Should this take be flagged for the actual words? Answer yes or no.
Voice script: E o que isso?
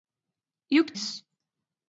no